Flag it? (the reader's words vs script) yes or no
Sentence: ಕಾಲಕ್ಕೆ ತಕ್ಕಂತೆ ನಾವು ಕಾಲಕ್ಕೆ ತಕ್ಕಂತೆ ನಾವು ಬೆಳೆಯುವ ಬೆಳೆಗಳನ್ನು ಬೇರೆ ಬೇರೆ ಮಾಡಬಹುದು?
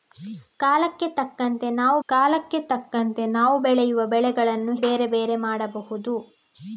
no